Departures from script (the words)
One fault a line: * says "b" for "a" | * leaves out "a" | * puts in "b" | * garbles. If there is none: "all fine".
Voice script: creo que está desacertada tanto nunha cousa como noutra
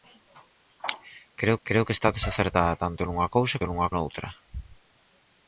* puts in "creo"
* says "nunha" for "como"